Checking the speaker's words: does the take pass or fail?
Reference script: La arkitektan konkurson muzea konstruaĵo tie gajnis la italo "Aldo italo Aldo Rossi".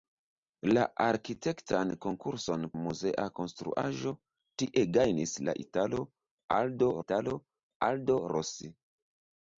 pass